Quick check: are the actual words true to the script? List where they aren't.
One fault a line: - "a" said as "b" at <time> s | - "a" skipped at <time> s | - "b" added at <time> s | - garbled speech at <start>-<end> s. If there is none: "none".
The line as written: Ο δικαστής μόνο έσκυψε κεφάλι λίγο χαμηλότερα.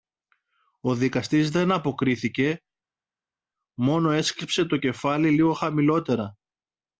- "δεν αποκρίθηκε" added at 1.5 s
- "το" added at 4.7 s